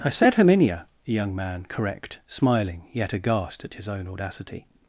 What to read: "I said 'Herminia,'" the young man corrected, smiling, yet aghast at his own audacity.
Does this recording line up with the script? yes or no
no